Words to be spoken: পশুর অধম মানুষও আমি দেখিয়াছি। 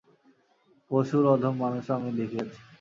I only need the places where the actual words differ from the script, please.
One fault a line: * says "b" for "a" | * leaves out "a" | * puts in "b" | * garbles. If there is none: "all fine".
all fine